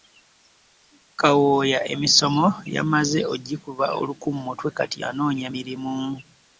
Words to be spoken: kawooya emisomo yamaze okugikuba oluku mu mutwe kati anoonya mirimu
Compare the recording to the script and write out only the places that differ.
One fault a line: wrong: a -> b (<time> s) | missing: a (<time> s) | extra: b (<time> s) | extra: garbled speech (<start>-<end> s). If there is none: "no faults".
no faults